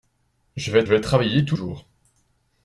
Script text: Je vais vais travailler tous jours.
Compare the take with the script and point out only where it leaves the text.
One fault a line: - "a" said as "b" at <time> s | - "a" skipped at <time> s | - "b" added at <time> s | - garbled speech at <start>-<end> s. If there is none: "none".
none